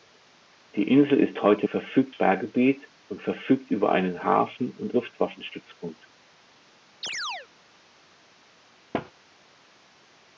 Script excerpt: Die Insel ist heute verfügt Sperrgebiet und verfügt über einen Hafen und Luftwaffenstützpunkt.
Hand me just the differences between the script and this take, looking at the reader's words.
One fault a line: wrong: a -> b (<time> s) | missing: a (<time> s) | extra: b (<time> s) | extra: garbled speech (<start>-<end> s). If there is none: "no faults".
no faults